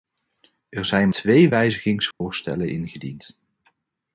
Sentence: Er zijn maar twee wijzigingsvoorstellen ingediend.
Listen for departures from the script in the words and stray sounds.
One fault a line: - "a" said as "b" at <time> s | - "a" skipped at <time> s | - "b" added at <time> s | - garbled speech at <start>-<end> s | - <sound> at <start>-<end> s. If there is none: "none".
- "maar" skipped at 1.1 s
- dropout at 2.1-2.2 s